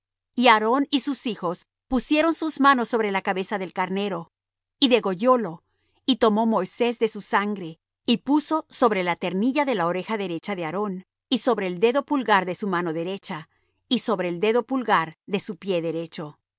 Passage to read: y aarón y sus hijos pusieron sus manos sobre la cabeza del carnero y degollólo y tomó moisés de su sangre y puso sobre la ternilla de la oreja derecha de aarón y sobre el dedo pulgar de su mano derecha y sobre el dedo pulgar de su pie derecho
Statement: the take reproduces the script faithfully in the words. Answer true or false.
true